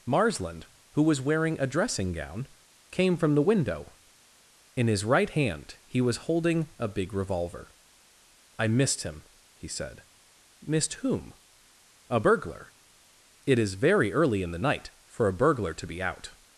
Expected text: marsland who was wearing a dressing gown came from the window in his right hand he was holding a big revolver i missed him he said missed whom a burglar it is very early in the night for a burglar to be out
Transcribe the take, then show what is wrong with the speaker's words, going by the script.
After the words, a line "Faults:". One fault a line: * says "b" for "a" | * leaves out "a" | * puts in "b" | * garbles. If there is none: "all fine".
marsland who was wearing a dressing gown came from the window in his right hand he was holding a big revolver i missed him he said missed whom a burglar it is very early in the night for a burglar to be out
Faults:
all fine